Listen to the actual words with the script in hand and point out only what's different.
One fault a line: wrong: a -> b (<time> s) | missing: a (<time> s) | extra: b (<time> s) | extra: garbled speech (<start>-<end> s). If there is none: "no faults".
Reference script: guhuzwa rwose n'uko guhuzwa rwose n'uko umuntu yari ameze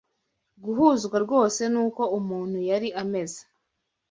missing: guhuzwa rwose n'uko (2.0 s)